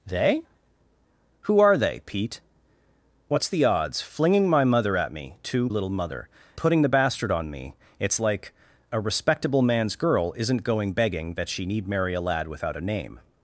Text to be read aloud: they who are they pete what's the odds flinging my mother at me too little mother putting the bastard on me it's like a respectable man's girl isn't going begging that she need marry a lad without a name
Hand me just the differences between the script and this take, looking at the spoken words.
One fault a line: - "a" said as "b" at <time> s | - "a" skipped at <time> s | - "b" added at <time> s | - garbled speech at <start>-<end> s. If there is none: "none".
none